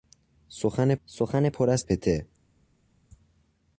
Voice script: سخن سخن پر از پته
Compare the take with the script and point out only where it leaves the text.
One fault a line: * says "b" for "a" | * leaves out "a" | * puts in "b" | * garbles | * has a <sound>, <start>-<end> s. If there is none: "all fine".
all fine